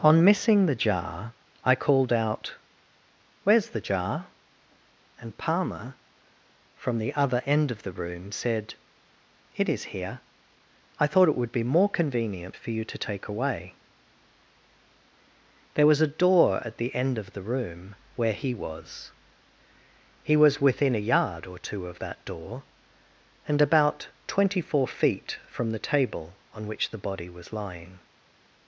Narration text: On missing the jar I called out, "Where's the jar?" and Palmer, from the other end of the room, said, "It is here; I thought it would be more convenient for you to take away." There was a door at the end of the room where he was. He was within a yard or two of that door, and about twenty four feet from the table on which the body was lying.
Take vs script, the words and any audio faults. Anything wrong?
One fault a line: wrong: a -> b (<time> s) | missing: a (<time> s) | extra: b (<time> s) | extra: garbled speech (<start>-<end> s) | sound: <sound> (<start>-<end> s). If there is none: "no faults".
no faults